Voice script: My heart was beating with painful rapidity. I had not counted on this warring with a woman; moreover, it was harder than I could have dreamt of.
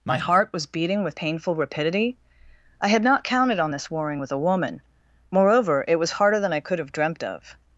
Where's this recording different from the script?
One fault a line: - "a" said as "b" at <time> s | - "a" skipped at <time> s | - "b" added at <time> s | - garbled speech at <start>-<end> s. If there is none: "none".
none